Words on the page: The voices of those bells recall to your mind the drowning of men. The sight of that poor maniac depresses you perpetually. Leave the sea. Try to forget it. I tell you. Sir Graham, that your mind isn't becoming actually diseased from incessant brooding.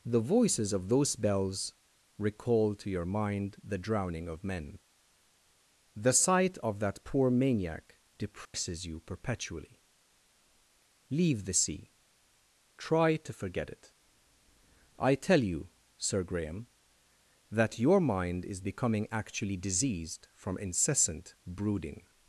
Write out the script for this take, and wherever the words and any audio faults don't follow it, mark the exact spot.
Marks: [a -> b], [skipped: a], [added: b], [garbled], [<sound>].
The voices of those bells recall to your mind the drowning of men. The sight of that poor maniac depresses [dropout] you perpetually. Leave the sea. Try to forget it. I tell you. Sir Graham, that your mind [isn't -> is] becoming actually diseased from incessant brooding.